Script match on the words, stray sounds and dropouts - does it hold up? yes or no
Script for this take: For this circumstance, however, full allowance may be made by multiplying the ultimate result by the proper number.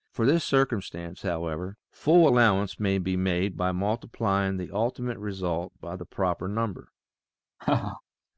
no